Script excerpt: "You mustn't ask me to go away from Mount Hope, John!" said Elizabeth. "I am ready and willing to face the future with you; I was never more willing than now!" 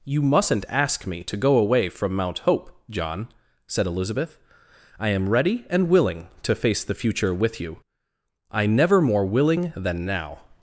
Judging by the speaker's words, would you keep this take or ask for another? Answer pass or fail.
fail